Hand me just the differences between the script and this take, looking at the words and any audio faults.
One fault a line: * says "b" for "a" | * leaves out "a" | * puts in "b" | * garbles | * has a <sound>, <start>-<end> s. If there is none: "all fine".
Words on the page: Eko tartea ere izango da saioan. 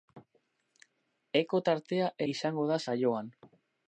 * leaves out "ere"